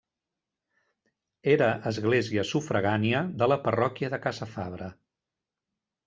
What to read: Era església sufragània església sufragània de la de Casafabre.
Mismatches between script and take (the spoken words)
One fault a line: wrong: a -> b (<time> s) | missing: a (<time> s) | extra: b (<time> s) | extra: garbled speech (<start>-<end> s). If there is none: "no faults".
missing: església sufragània (3.2 s)
extra: parròquia (3.6 s)